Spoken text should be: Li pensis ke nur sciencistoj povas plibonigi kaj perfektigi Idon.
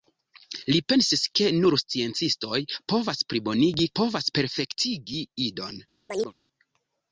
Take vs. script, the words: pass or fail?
fail